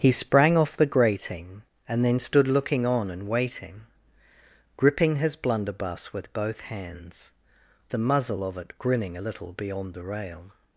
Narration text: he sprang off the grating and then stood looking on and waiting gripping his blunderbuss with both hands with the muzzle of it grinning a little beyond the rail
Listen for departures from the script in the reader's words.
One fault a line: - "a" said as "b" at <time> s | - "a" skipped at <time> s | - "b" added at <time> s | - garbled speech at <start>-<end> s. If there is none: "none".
- "with" skipped at 7.3 s